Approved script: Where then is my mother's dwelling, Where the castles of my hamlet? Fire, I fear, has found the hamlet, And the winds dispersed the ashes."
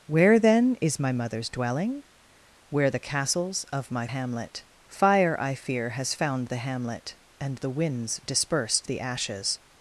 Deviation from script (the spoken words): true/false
false